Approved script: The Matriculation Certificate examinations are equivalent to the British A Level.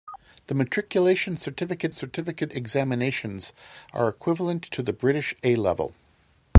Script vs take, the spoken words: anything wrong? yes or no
yes